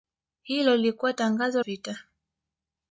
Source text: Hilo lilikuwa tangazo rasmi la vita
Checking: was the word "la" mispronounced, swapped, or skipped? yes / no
yes